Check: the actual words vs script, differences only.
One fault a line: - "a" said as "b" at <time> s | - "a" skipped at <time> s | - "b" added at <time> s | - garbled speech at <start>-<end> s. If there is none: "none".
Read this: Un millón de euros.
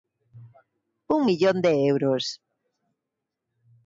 none